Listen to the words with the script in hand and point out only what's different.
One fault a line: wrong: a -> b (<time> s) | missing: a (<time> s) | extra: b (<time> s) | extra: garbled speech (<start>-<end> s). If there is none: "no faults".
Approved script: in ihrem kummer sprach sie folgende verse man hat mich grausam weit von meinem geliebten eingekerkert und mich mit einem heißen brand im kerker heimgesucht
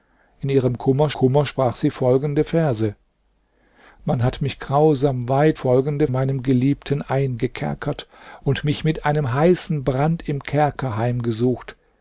extra: kummer (1.1 s)
wrong: von -> folgende (5.5 s)